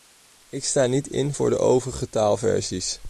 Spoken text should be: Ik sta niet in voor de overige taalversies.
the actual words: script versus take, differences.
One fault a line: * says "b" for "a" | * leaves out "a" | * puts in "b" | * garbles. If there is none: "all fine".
all fine